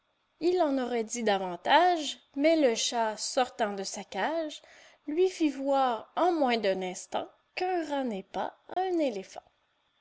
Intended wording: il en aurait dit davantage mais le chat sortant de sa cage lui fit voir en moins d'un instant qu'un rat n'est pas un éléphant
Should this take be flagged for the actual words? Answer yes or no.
no